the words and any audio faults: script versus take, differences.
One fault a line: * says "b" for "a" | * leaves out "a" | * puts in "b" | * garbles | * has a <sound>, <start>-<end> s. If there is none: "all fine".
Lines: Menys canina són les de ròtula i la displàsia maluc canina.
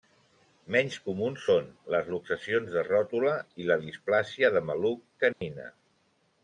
* says "comuns" for "canina"
* puts in "luxacions"
* puts in "de"
* has a dropout, 5.3-5.4 s